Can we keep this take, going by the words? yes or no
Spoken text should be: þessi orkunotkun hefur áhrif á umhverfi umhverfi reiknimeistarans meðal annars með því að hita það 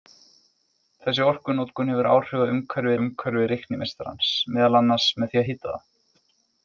yes